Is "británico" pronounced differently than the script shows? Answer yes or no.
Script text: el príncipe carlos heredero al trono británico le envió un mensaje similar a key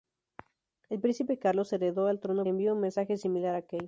yes